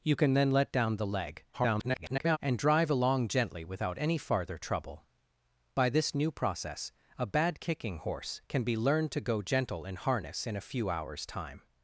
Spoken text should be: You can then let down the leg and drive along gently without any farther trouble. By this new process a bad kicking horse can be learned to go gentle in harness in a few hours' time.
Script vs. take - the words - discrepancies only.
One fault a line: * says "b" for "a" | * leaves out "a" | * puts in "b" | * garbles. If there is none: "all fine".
* garbles